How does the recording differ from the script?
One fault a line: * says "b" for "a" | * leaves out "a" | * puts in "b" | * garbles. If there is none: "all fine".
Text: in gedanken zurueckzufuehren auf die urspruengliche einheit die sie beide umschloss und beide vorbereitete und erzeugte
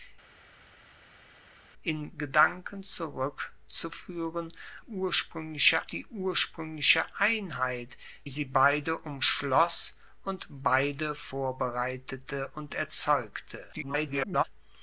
* says "urspruengliche" for "auf"
* leaves out "die"
* garbles